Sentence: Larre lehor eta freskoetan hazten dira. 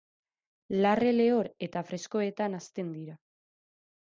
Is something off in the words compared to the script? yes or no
no